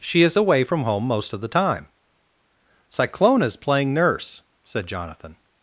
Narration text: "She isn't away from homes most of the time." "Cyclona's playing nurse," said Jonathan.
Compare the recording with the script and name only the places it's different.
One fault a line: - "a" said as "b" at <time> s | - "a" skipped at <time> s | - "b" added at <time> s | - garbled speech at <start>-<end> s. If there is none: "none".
- "isn't" said as "is" at 0.2 s
- "homes" said as "home" at 0.8 s